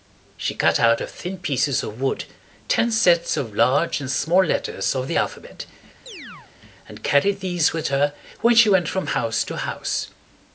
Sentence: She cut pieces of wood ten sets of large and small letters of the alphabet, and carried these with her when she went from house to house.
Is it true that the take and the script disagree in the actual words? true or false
true